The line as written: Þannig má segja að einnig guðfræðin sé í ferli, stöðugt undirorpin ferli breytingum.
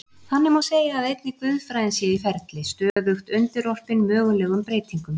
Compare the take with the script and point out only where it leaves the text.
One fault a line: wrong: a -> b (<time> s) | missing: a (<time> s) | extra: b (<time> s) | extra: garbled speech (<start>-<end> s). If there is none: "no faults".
wrong: ferli -> mögulegum (4.1 s)